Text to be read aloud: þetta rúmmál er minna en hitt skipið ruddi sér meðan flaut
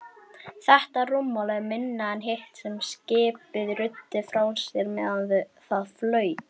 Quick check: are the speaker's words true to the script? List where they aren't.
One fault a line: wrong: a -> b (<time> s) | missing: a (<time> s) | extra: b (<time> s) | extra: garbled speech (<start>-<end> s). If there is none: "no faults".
extra: sem (2.6 s)
extra: frá (4.3 s)
extra: það (5.7 s)